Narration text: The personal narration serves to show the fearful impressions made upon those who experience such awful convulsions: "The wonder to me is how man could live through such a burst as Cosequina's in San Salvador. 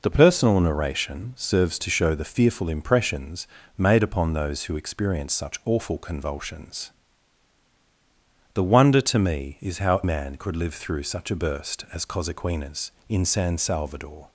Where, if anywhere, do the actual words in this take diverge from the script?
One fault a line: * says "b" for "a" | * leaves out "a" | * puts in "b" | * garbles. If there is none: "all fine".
all fine